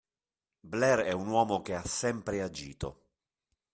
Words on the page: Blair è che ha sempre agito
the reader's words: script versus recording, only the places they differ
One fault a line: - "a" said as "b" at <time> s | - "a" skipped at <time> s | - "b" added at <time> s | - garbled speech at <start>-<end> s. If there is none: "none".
- "un uomo" added at 1.1 s